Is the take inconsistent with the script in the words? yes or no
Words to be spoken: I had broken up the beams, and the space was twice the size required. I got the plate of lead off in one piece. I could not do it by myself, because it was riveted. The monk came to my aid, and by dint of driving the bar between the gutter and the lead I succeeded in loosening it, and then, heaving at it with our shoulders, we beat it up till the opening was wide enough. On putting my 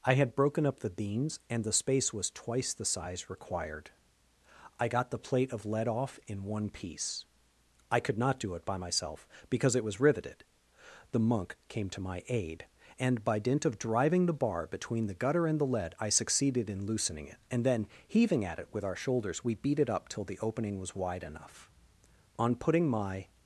no